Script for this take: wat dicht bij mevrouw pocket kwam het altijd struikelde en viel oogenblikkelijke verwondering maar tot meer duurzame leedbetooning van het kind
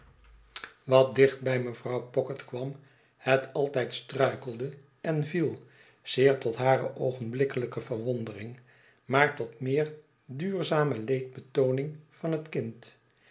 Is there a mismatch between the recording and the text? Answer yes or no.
yes